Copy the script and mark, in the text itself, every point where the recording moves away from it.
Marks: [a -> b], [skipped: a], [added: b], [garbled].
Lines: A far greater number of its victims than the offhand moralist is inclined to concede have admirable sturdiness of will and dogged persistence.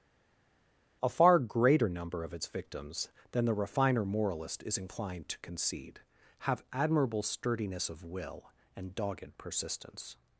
A far greater number of its victims than the [offhand -> refiner] moralist is inclined to concede have admirable sturdiness of will and dogged persistence.